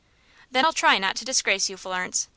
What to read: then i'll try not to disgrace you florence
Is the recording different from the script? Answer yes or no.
no